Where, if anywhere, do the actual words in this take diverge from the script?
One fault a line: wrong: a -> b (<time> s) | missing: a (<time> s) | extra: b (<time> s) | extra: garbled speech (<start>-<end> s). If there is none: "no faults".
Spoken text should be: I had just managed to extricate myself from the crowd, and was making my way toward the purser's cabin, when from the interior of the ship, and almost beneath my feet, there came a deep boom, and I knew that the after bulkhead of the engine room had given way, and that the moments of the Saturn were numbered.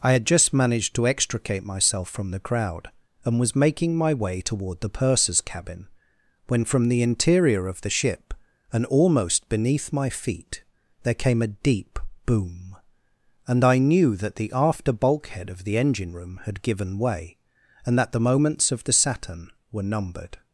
no faults